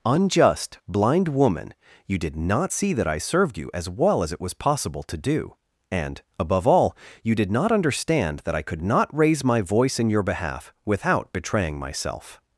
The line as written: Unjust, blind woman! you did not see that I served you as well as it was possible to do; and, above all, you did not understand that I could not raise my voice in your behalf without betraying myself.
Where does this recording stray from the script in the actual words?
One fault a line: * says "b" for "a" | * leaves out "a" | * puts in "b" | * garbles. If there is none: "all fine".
all fine